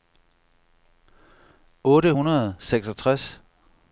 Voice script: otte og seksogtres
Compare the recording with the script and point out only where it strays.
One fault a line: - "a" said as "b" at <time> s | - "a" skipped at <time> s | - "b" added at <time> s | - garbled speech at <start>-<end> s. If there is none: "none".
- "hundrede" added at 2.1 s